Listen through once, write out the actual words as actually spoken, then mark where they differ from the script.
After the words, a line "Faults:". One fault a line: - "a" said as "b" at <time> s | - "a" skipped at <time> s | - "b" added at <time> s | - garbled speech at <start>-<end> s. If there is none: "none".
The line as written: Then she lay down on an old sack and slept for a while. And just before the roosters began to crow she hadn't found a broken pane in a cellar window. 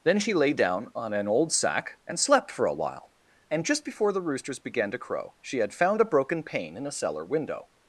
Then she lay down on an old sack and slept for a while. And just before the roosters began to crow she had found a broken pane in a cellar window.
Faults:
- "hadn't" said as "had" at 5.6 s